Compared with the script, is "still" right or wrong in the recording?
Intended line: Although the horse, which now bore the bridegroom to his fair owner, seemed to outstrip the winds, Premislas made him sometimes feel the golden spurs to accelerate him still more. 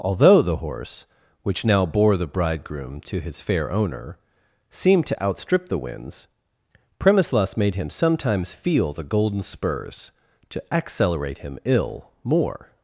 wrong